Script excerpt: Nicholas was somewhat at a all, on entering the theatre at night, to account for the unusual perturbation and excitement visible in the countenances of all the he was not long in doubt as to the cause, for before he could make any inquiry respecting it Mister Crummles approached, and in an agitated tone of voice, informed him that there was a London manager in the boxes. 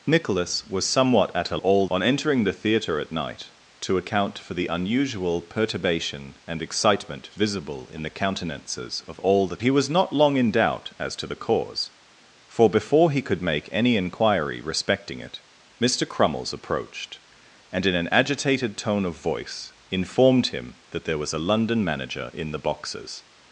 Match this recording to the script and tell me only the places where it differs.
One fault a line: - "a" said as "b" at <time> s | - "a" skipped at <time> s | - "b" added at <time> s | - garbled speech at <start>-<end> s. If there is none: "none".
none